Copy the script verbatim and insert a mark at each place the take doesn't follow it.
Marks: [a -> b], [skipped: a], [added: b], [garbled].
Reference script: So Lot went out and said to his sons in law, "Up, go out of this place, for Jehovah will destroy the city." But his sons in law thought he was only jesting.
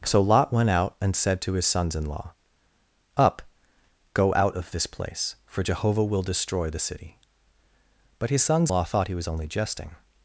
So Lot went out and said to his sons in law, "Up, go out of this place, for Jehovah will destroy the city." But his sons [skipped: in] law thought he was only jesting.